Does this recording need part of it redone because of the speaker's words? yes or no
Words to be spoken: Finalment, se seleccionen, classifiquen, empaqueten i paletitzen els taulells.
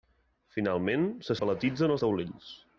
yes